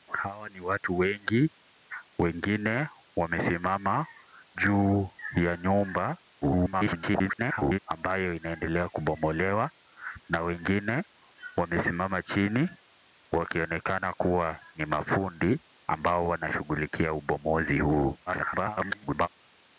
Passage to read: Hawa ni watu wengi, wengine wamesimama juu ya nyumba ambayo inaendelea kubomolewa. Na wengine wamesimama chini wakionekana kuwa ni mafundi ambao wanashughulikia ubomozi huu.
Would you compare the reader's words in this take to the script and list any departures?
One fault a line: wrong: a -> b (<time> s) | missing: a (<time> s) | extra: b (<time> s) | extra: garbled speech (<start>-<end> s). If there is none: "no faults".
extra: garbled speech (6.4-7.8 s)
extra: garbled speech (18.3-19.3 s)